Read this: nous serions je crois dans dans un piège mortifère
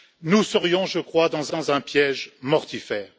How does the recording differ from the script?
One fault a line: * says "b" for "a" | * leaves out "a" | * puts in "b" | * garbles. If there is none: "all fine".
all fine